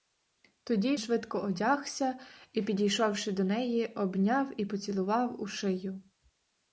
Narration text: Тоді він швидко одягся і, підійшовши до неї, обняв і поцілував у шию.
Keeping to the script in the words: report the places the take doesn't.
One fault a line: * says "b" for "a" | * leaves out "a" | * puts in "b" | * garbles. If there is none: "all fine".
* leaves out "він"